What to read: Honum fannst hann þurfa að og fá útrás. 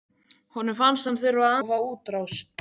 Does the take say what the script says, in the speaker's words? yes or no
yes